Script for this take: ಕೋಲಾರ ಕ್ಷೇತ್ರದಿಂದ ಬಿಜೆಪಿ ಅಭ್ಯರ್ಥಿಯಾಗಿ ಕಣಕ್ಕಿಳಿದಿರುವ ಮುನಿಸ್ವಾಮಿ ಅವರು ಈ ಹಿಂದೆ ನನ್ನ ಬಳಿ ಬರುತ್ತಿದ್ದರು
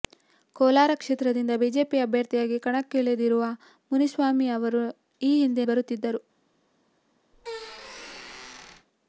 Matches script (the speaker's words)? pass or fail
fail